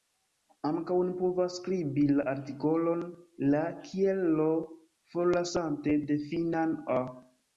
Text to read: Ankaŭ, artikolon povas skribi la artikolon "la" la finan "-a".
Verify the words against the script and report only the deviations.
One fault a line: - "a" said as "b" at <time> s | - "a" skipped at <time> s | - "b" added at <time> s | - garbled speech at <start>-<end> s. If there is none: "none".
- "artikolon" said as "oni" at 1.0 s
- "kiel l forlasante" added at 3.9 s